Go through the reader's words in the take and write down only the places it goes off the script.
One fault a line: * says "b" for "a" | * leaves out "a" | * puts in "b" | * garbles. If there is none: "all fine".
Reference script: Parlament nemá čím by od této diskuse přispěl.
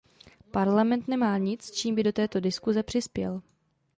* puts in "nic"
* says "do" for "od"